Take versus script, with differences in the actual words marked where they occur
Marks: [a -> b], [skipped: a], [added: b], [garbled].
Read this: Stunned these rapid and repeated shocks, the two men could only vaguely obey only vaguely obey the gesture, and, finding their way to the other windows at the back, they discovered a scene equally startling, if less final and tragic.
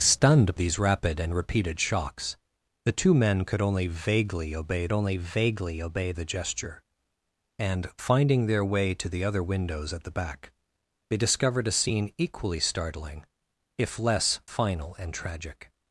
Stunned these rapid and repeated shocks, the two men could only vaguely obey only vaguely obey the gesture, and, finding their way to the other windows at the back, they discovered a scene equally startling, if less final and tragic.